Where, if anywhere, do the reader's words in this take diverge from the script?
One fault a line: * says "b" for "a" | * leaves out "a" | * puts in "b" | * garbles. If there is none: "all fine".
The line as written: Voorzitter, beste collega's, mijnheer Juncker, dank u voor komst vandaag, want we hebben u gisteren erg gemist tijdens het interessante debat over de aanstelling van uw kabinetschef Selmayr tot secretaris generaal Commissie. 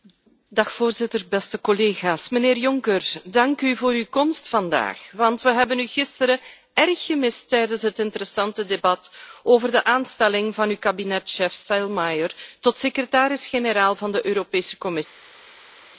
* puts in "uw"
* puts in "van de Europese"